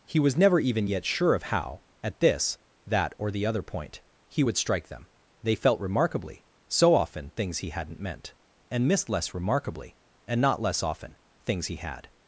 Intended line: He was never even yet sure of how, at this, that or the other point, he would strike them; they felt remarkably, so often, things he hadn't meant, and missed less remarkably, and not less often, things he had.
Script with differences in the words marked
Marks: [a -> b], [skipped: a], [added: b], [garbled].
He was never even yet sure of how, at this, that or the other point, he would strike them; they felt remarkably, so often, things he hadn't meant, and missed less remarkably, and not less often, things he had.